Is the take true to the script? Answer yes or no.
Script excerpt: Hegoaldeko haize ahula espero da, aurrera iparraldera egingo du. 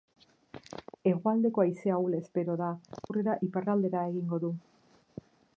yes